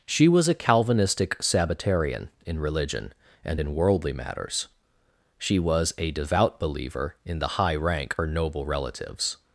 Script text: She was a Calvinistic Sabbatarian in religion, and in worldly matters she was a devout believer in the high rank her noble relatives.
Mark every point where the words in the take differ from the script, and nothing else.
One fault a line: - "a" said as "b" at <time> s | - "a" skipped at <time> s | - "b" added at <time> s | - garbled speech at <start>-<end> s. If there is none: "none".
none